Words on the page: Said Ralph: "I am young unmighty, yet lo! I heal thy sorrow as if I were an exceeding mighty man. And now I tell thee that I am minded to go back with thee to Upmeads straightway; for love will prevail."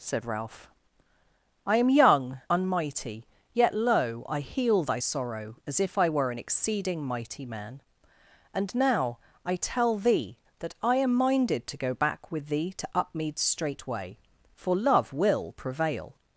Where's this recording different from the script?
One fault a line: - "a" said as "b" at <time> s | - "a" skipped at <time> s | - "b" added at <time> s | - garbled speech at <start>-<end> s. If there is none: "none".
none